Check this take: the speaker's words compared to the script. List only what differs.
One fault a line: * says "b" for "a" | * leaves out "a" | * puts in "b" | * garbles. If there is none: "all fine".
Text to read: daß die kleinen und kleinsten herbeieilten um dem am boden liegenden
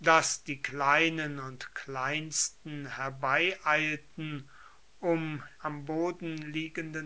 * leaves out "dem"